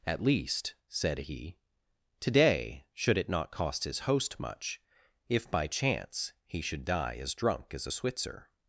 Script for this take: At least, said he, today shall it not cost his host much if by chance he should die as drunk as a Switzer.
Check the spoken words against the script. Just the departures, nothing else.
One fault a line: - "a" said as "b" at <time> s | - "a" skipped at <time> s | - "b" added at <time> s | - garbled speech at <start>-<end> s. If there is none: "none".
- "shall" said as "should" at 2.9 s